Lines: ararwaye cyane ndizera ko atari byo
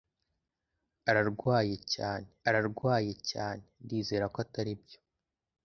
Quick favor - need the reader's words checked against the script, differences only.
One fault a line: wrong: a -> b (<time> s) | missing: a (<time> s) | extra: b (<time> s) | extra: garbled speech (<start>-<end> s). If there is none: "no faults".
extra: ararwaye cyane (2.5 s)